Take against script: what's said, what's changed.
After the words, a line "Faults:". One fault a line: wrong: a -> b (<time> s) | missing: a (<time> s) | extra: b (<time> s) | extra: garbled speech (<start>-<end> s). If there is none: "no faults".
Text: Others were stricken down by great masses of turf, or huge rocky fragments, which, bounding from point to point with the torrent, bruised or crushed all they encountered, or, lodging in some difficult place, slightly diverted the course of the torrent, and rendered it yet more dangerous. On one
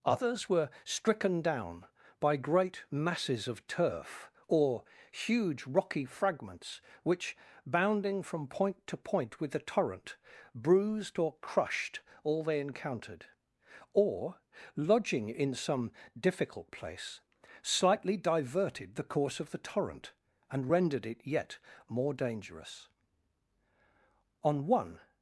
Others were stricken down by great masses of turf, or huge rocky fragments, which, bounding from point to point with the torrent, bruised or crushed all they encountered, or, lodging in some difficult place, slightly diverted the course of the torrent, and rendered it yet more dangerous. On one
Faults:
no faults